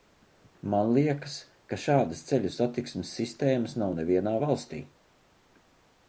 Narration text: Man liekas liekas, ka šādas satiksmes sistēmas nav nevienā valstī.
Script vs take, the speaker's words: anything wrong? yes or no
yes